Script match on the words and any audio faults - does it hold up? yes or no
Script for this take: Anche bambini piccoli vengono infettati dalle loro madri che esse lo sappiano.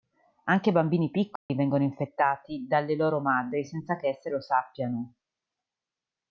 no